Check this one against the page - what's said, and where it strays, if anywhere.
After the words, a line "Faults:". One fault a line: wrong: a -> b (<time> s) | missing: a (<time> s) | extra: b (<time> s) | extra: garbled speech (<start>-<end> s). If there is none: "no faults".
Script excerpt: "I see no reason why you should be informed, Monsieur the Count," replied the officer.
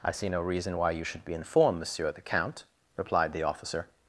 "I see no reason why you should be informed, Monsieur the Count," replied the officer.
Faults:
no faults